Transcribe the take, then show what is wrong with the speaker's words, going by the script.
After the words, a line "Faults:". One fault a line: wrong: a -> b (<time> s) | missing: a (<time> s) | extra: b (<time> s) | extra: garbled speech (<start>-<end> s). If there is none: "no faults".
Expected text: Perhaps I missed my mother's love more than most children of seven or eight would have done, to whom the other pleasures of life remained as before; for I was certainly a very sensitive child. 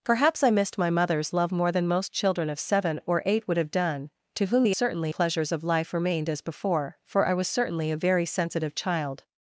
Perhaps I missed my mother's love more than most children of seven or eight would have done, to whom the certainly pleasures of life remained as before; for I was certainly a very sensitive child.
Faults:
wrong: other -> certainly (4.7 s)